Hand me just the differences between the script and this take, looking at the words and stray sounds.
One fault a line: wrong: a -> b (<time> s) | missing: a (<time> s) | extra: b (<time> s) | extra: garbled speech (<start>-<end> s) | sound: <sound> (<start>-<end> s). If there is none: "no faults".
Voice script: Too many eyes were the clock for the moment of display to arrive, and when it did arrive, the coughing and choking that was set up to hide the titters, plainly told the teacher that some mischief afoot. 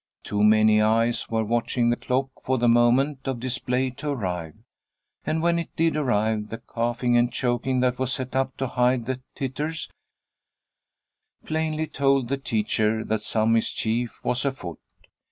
extra: watching (1.4 s)
extra: was (14.2 s)